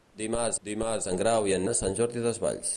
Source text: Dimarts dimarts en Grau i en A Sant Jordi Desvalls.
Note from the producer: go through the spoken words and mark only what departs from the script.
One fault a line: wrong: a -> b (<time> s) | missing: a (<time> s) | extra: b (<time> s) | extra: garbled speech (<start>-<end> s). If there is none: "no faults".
no faults